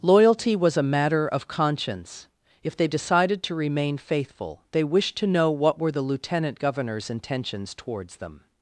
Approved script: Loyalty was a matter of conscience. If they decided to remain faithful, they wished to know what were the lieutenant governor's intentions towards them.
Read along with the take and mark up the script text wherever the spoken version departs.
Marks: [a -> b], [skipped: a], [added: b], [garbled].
Loyalty was a matter of conscience. If they decided to remain faithful, they wished to know what were the lieutenant governor's intentions towards them.